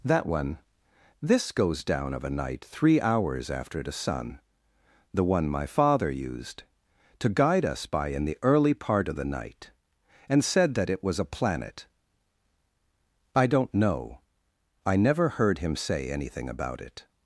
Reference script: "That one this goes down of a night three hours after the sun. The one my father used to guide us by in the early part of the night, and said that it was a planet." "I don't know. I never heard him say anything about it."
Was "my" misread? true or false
false